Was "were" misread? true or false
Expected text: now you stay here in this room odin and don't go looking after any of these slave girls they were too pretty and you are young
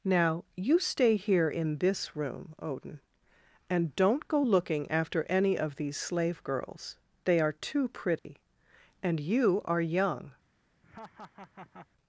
true